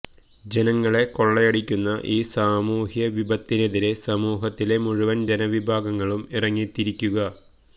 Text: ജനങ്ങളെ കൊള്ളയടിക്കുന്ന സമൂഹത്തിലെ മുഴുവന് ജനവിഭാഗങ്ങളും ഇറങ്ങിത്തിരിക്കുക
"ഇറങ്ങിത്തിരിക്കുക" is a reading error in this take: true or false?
false